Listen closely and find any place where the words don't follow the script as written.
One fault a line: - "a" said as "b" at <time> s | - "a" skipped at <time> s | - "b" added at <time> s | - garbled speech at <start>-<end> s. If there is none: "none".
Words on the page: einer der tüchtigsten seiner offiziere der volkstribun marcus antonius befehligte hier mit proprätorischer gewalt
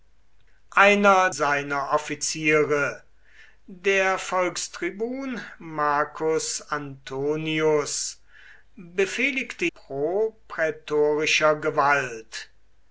- "der tüchtigsten" skipped at 1.3 s
- "hier mit" skipped at 9.7 s